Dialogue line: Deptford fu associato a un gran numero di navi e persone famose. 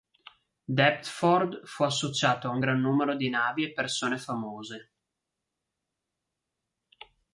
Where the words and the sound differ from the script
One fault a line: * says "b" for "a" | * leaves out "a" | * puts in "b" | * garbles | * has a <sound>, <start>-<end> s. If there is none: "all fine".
all fine